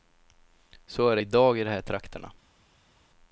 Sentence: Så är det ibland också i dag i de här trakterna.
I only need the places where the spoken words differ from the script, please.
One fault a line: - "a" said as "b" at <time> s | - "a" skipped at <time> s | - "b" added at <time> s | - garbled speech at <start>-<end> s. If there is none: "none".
- "ibland också" skipped at 1.2 s